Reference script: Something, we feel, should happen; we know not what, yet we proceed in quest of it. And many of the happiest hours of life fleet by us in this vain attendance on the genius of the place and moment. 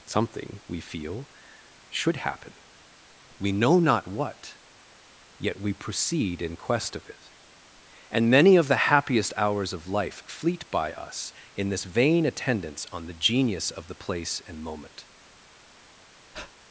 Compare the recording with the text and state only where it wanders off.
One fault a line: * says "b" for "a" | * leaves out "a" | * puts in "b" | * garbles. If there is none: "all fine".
all fine